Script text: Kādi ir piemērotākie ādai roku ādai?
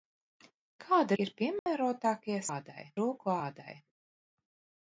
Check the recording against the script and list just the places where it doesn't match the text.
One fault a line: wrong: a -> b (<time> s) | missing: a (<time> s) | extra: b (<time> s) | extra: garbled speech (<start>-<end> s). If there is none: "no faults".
no faults